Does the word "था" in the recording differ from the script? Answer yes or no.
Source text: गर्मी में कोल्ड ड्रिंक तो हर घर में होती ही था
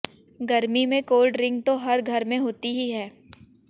yes